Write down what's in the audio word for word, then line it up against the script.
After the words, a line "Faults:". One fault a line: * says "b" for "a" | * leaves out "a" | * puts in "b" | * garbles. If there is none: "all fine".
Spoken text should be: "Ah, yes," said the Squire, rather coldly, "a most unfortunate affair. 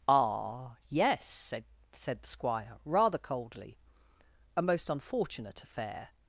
"Ah, yes," said said the Squire, rather coldly, "a most unfortunate affair.
Faults:
* puts in "said"